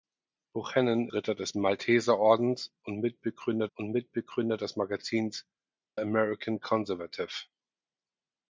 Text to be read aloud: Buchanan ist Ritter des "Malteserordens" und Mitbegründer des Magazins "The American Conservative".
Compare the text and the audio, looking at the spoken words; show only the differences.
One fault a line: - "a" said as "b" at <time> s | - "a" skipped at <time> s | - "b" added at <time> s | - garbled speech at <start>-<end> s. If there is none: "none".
- "ist" skipped at 1.1 s
- "und Mitbegründer" added at 3.7 s
- "The" skipped at 5.5 s